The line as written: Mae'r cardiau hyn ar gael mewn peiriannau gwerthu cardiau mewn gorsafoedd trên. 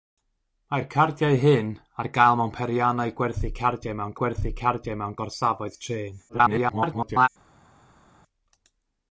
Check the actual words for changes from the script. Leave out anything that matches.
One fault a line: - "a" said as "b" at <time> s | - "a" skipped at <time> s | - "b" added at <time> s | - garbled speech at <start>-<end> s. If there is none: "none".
- "gwerthu cardiau mewn" added at 4.2 s
- garbled speech at 6.3-7.3 s